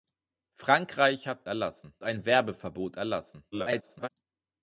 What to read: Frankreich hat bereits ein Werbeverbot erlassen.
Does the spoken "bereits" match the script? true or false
false